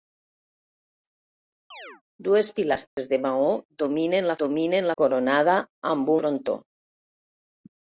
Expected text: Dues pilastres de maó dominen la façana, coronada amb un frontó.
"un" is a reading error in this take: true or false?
true